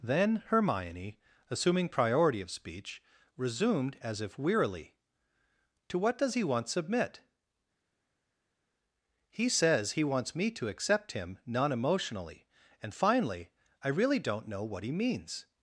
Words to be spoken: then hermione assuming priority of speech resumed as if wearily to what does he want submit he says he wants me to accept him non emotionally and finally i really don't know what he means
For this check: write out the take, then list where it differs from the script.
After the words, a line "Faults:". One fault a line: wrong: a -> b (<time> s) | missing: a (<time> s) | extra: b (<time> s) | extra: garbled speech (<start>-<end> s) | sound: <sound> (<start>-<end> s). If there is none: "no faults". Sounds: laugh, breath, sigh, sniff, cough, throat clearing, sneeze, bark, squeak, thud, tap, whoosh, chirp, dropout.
then hermione assuming priority of speech resumed as if wearily to what does he want submit he says he wants me to accept him non emotionally and finally i really don't know what he means
Faults:
no faults